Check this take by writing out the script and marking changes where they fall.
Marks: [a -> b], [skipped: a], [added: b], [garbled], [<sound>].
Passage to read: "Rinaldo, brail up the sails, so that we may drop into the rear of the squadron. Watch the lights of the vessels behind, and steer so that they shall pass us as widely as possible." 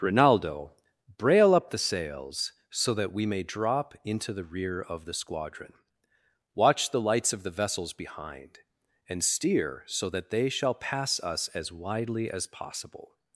"Rinaldo, brail up the sails, so that we may drop into the rear of the squadron. Watch the lights of the vessels behind, and steer so that they shall pass us as widely as possible."